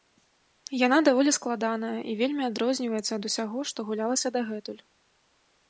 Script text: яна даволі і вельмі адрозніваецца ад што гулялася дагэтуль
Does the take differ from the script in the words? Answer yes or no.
yes